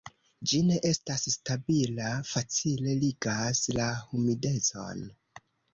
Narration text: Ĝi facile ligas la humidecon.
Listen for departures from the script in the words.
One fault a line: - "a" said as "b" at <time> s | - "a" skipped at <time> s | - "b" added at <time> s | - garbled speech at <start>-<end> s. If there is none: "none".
- "ne estas stabila" added at 0.7 s